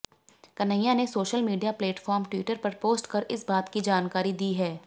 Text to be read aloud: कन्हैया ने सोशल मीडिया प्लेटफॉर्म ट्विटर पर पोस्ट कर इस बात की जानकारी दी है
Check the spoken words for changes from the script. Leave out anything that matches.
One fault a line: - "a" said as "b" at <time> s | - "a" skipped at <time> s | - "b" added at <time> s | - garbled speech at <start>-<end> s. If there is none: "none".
none